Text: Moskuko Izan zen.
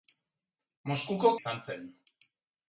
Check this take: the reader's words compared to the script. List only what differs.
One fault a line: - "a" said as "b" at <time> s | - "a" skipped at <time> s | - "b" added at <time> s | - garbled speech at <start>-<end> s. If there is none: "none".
none